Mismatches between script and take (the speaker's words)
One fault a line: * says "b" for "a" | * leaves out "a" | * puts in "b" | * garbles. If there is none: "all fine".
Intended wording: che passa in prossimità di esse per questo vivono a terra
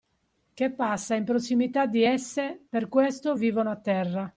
all fine